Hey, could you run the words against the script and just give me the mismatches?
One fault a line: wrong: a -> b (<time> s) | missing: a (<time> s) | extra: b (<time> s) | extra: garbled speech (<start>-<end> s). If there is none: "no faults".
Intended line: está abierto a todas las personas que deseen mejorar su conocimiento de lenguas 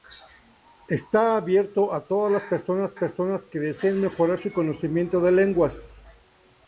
extra: personas (2.9 s)